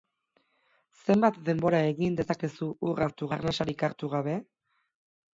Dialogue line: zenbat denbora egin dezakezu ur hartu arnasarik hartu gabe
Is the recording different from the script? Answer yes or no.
no